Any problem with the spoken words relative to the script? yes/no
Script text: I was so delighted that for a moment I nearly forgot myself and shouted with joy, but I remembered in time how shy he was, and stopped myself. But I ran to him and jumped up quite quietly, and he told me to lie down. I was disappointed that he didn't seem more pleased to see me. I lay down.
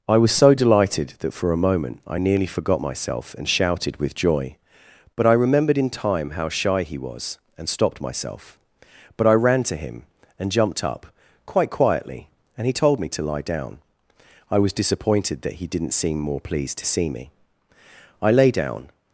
no